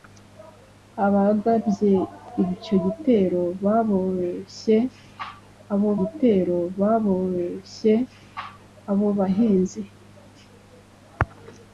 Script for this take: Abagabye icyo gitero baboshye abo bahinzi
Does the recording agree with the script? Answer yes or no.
no